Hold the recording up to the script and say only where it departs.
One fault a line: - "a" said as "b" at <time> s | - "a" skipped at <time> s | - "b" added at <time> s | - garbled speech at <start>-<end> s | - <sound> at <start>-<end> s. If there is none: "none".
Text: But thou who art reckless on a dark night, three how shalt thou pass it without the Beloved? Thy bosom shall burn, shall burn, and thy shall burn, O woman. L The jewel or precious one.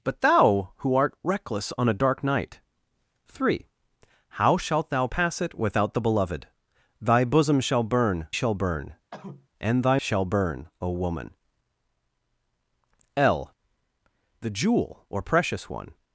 - cough at 9.1-9.5 s